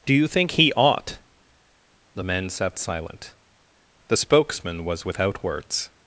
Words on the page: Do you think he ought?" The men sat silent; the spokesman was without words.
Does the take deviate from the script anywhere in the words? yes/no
no